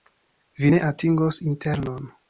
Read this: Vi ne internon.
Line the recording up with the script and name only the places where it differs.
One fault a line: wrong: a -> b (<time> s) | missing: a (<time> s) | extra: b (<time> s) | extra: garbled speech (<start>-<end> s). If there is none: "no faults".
extra: atingos (0.9 s)